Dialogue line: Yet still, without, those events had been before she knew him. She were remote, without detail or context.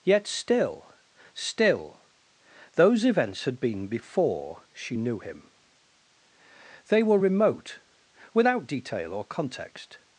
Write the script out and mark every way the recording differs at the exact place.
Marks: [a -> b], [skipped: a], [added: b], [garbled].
Yet still, [without, -> still] those events had been before she knew him. [She -> They] were remote, without detail or context.